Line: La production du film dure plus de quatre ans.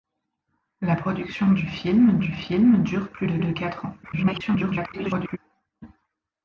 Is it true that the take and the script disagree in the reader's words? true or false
true